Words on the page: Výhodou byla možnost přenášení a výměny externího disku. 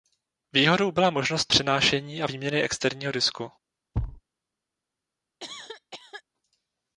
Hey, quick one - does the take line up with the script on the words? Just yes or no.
yes